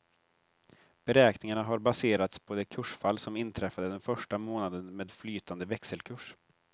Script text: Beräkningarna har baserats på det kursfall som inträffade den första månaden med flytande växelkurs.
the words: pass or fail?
pass